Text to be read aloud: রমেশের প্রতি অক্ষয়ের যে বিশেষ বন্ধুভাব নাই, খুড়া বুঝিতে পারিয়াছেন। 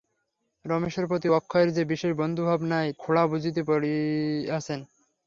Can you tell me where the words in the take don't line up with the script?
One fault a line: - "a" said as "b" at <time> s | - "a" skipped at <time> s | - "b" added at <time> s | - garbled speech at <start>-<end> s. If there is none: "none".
none